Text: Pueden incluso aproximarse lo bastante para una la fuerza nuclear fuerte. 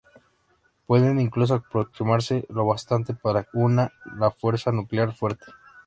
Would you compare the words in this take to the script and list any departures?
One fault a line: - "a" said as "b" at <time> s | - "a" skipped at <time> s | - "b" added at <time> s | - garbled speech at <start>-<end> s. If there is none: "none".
none